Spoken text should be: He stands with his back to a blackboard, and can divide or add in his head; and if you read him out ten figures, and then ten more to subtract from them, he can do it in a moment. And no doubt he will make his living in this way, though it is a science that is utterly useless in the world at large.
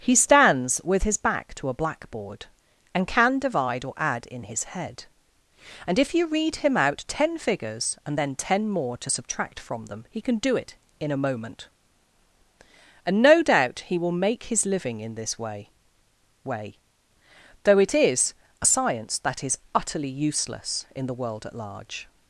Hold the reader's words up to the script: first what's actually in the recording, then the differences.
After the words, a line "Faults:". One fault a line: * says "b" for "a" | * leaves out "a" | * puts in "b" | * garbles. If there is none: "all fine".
He stands with his back to a blackboard, and can divide or add in his head; and if you read him out ten figures, and then ten more to subtract from them, he can do it in a moment. And no doubt he will make his living in this way way, though it is a science that is utterly useless in the world at large.
Faults:
* puts in "way"